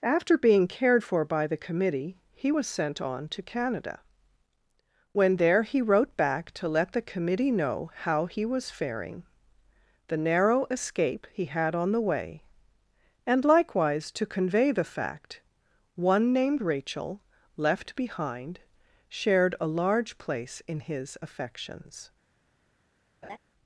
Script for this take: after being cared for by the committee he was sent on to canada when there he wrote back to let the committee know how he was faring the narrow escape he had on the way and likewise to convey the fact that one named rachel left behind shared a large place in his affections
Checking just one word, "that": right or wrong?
wrong